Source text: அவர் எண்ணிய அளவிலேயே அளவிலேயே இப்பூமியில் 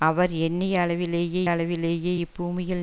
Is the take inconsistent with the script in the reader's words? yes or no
no